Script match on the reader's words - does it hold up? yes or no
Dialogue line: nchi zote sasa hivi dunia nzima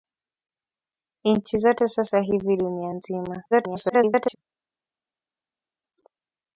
no